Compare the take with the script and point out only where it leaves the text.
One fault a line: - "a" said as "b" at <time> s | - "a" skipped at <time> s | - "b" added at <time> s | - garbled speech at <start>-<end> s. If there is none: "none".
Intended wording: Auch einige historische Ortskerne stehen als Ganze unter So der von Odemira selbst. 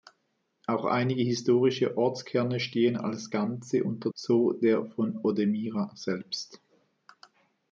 none